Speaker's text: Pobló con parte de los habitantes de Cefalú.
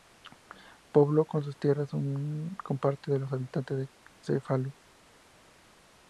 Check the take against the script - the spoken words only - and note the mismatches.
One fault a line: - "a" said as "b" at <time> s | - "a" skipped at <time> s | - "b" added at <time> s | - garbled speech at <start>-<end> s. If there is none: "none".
- "sus tierras" added at 1.4 s